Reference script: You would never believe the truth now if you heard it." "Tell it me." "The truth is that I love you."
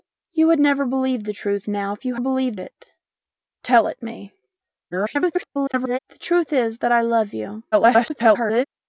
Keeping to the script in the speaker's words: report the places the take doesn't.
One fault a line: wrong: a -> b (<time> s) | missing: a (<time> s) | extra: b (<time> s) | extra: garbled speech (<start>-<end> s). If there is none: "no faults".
wrong: heard -> believe (2.2 s)
extra: garbled speech (4.9-6.0 s)
extra: garbled speech (7.7-8.6 s)